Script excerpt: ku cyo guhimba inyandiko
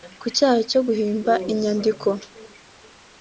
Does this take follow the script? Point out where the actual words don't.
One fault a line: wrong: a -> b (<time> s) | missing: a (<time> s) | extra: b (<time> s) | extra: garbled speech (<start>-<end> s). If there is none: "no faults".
extra: cyaha (0.3 s)